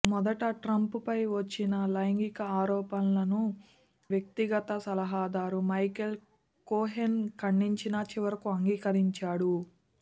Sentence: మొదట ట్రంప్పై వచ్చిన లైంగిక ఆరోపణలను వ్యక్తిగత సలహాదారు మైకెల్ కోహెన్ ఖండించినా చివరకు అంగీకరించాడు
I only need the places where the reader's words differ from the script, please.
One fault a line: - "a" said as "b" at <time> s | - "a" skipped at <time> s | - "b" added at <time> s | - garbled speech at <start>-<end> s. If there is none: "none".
none